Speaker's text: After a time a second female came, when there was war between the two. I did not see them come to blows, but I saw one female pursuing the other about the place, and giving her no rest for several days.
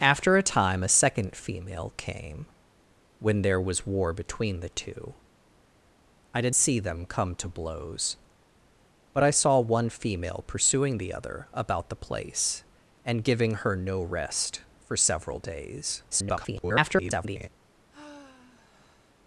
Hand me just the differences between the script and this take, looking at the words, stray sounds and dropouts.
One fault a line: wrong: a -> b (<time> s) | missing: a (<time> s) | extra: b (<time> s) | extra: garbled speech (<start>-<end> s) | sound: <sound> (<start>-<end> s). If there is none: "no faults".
missing: not (6.5 s)
extra: garbled speech (16.1-17.5 s)
sound: sigh (17.9-19.2 s)